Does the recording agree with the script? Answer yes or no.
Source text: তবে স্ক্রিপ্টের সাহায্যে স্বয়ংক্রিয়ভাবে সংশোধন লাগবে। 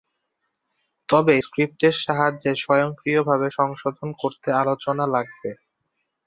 no